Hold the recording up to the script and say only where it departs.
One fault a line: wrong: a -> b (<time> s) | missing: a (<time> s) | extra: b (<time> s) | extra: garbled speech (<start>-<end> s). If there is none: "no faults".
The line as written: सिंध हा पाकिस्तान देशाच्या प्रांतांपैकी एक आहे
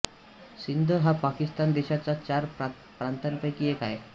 extra: चार (2.2 s)